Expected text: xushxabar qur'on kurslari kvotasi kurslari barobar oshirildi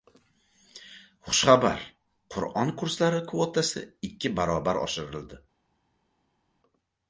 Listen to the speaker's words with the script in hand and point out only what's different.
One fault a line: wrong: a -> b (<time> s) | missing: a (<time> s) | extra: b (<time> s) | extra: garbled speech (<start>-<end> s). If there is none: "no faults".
wrong: kurslari -> ikki (4.1 s)